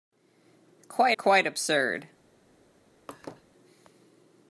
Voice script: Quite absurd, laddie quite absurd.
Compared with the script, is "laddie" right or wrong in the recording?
wrong